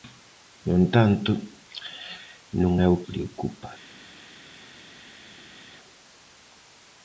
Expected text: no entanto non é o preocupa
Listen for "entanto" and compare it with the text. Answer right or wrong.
right